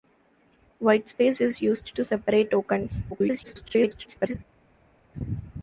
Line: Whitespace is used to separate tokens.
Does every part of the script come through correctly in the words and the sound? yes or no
no